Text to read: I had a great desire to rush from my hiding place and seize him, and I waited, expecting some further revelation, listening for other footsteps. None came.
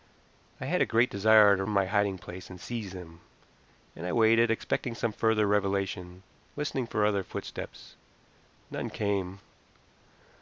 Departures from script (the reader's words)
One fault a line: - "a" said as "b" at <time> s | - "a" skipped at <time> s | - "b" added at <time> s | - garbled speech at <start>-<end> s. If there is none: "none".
- "rush" skipped at 1.6 s